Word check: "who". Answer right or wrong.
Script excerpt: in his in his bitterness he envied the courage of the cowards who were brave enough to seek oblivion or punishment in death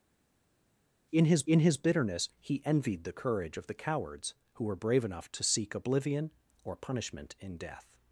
right